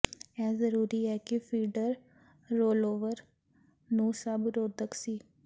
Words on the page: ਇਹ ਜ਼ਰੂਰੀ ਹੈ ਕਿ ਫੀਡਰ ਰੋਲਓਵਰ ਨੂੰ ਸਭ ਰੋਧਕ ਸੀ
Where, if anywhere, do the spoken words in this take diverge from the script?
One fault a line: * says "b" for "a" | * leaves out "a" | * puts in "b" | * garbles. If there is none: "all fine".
all fine